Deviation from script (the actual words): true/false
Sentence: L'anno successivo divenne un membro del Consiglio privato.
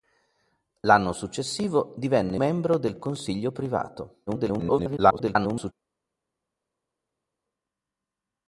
true